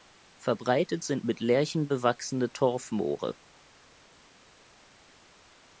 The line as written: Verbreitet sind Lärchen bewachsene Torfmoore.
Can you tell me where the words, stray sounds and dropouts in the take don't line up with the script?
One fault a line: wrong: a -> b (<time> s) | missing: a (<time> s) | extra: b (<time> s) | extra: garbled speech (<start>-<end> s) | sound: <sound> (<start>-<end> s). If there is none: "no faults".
extra: mit (1.2 s)